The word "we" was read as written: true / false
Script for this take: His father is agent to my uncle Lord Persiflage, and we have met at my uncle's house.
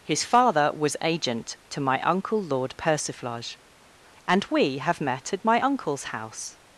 true